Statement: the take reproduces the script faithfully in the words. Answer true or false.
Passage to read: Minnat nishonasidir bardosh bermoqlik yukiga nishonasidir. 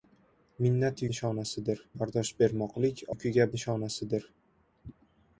true